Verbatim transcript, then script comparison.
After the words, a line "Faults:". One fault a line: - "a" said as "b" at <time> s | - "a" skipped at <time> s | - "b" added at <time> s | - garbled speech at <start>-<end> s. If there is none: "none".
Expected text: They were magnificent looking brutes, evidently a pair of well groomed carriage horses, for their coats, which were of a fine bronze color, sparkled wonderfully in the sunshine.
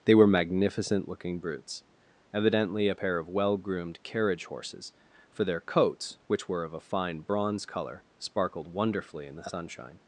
They were magnificent looking brutes, evidently a pair of well groomed carriage horses, for their coats, which were of a fine bronze color, sparkled wonderfully in the sunshine.
Faults:
none